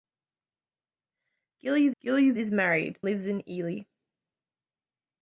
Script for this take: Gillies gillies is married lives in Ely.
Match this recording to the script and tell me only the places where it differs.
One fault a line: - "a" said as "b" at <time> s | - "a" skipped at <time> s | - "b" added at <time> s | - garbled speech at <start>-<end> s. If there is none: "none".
none